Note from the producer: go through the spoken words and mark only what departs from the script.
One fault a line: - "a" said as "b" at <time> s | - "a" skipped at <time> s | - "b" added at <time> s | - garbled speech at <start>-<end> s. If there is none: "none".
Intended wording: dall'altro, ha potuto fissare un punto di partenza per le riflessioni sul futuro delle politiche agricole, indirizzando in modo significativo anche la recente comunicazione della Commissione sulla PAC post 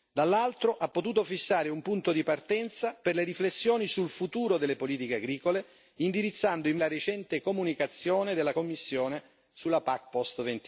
- "modo significativo anche" skipped at 6.8 s